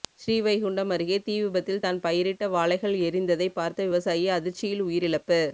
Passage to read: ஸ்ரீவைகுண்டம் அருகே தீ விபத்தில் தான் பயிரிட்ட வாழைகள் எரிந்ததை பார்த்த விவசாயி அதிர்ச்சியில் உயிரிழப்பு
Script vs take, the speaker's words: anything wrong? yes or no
no